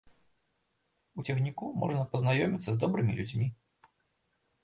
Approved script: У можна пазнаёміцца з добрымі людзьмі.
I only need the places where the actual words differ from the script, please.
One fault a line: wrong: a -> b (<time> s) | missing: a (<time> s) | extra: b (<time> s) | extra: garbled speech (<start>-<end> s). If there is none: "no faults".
extra: цягніку (1.2 s)